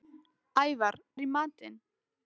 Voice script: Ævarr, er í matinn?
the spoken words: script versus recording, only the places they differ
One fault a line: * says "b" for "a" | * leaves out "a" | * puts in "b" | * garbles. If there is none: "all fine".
all fine